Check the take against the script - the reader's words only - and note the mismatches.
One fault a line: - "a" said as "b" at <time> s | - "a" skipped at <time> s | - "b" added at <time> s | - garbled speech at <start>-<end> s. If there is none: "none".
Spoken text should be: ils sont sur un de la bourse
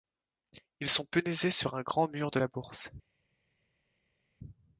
- "punaisés" added at 1.0 s
- "grand mur" added at 1.8 s